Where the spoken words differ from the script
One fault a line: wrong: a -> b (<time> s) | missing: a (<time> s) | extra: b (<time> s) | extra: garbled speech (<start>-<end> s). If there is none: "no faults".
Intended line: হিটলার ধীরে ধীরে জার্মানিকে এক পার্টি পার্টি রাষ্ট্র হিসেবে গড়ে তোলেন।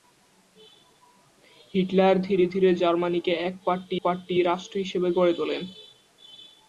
no faults